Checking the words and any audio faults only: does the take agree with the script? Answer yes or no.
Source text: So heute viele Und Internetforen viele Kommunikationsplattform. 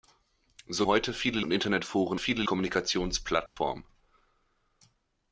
no